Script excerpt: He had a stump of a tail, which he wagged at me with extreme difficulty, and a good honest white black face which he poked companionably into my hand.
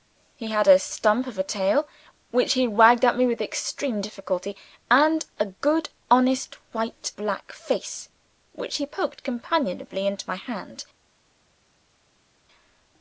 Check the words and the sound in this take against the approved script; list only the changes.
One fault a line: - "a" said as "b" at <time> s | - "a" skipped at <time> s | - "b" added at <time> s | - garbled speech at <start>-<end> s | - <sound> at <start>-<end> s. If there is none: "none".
none